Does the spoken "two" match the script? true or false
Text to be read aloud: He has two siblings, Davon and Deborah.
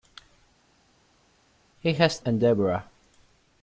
false